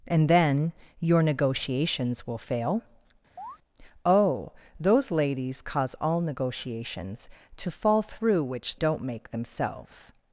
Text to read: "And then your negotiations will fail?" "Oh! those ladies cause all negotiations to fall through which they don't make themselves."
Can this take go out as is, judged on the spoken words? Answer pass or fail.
fail